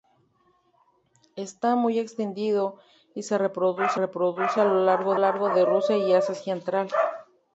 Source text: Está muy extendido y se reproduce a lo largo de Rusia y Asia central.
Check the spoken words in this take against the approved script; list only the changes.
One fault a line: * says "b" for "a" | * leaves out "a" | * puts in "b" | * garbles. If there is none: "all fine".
* puts in "reproduce"
* puts in "largo"